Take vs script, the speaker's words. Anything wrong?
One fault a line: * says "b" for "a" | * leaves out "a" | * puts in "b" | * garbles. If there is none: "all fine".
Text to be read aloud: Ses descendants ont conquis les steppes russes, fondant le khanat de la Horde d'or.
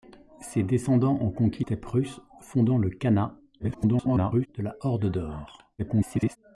* leaves out "les"
* garbles
* garbles